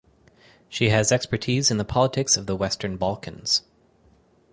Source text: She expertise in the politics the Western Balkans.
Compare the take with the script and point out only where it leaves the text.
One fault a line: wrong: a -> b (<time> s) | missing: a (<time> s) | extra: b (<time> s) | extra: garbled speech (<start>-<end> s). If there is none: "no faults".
extra: has (0.9 s)
extra: of (2.4 s)